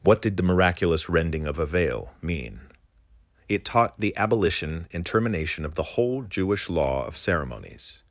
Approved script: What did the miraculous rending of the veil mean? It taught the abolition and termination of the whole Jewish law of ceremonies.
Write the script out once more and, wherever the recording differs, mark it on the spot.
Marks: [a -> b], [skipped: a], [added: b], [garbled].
What did the miraculous rending of [the -> a] veil mean? It taught the abolition and termination of the whole Jewish law of ceremonies.